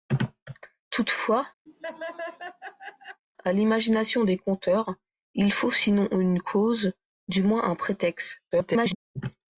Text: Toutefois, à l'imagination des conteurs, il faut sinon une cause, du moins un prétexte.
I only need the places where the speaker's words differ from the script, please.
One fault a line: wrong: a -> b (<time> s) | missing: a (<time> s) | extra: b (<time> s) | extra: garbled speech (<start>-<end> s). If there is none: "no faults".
extra: garbled speech (8.5-9.0 s)